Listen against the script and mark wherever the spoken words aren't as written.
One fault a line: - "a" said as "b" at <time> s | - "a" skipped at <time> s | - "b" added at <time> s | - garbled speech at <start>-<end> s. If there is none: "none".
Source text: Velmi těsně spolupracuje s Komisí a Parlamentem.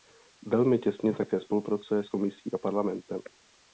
- "také" added at 1.1 s